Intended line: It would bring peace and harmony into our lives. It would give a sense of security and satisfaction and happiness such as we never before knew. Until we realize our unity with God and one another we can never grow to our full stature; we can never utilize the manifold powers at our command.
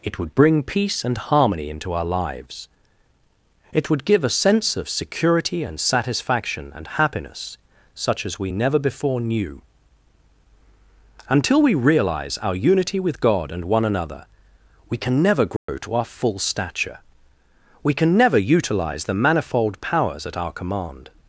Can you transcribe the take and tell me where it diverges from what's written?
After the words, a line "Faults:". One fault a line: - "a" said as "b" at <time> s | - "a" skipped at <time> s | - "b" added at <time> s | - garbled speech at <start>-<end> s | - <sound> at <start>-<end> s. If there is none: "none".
It would bring peace and harmony into our lives. It would give a sense of security and satisfaction and happiness such as we never before knew. Until we realize our unity with God and one another we can never grow to our full stature; we can never utilize the manifold powers at our command.
Faults:
- dropout at 15.6-15.7 s